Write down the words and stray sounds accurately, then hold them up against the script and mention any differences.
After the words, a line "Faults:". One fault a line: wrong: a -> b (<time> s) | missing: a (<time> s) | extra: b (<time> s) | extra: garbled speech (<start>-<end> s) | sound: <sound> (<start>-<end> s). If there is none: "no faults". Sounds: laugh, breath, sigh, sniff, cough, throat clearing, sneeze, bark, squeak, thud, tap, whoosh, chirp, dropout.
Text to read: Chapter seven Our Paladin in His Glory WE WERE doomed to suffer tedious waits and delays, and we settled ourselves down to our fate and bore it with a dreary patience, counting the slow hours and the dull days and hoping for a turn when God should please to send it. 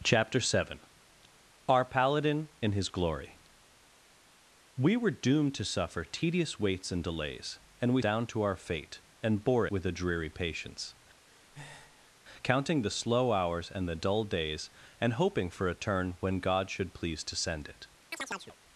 Chapter seven Our Paladin in His Glory WE WERE doomed to suffer tedious waits and delays, and we down to our fate and bore with a dreary patience, counting the slow hours and the dull days and hoping for a turn when God should please to send it.
Faults:
missing: settled ourselves (8.0 s)
missing: it (9.7 s)
sound: breath (11.3-12.1 s)
sound: chirp (18.1-18.6 s)